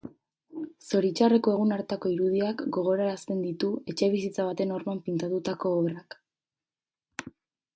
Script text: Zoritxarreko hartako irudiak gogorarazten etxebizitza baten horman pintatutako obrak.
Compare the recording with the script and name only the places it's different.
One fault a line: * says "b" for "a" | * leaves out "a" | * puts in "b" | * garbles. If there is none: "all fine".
* puts in "egun"
* puts in "ditu"